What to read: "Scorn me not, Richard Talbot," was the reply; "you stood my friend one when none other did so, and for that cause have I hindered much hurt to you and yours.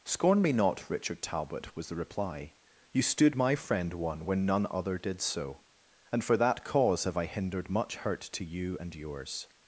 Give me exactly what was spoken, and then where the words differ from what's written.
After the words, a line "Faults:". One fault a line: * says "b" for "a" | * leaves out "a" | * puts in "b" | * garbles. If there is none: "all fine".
"Scorn me not, Richard Talbot," was the reply; "you stood my friend one when none other did so, and for that cause have I hindered much hurt to you and yours.
Faults:
all fine